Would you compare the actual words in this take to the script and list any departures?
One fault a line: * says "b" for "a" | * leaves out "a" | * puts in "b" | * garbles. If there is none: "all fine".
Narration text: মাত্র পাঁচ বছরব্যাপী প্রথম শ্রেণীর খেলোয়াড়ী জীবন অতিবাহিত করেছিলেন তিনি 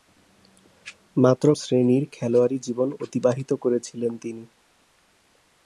* leaves out "পাঁচ বছরব্যাপী প্রথম"